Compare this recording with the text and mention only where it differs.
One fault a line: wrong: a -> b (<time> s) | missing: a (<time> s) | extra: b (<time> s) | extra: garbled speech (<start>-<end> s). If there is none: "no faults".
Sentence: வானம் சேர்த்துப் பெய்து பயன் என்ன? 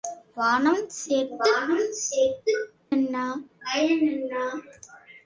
missing: பெய்து பயன் (2.5 s)